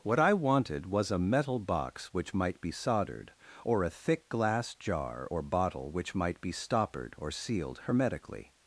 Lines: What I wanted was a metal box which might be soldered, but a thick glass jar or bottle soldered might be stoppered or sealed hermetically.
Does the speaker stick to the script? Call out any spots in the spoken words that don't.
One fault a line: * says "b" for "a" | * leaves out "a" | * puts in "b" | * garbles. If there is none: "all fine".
* says "or" for "but"
* says "which" for "soldered"